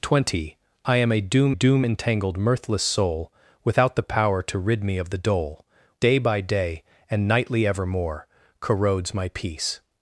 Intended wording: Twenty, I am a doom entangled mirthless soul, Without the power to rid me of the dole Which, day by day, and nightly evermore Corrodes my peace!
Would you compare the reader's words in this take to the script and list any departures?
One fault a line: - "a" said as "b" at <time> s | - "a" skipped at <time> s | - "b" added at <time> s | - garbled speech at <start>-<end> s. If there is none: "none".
- "doom" added at 1.5 s
- "Which" skipped at 5.7 s